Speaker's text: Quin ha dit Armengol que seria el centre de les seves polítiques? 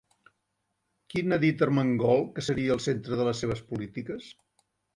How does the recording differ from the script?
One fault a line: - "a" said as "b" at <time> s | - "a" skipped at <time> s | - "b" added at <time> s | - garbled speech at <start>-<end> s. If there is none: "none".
none